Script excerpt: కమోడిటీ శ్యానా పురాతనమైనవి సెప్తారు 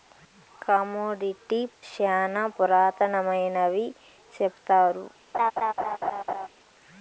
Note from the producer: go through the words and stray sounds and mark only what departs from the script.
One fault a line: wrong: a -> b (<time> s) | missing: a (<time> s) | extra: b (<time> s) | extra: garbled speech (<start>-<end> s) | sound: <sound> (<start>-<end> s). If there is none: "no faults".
sound: laugh (5.3-6.5 s)